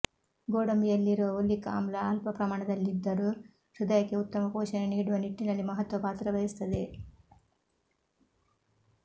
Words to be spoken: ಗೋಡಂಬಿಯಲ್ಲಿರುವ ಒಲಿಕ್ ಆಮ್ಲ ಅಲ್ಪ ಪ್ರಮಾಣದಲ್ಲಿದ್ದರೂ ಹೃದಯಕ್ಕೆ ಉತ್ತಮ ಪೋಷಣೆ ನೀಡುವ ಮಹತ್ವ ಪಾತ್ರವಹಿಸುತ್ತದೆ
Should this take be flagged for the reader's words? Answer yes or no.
yes